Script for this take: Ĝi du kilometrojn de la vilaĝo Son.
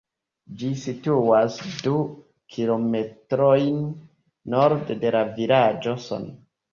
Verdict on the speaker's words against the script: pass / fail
fail